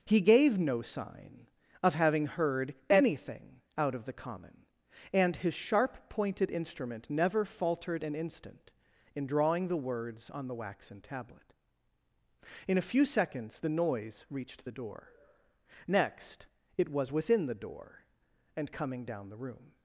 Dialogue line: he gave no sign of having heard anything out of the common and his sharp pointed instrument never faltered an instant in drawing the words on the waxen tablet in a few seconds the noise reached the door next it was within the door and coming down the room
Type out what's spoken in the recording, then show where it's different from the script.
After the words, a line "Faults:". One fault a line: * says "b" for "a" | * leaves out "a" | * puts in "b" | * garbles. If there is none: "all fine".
he gave no sign of having heard anything out of the common and his sharp pointed instrument never faltered an instant in drawing the words on the waxen tablet in a few seconds the noise reached the door next it was within the door and coming down the room
Faults:
all fine